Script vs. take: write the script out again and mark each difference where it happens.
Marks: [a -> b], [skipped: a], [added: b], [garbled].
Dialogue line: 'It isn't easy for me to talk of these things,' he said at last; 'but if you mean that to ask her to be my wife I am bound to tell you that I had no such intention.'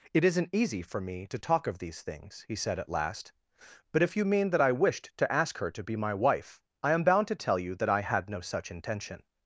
'It isn't easy for me to talk of these things,' he said at last; 'but if you mean that [added: I wished] to ask her to be my wife I am bound to tell you that I had no such intention.'